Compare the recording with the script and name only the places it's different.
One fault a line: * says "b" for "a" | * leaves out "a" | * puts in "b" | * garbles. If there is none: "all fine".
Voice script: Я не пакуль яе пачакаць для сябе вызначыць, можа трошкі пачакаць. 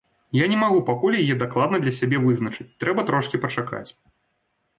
* puts in "магу"
* says "дакладна" for "пачакаць"
* says "трэба" for "можа"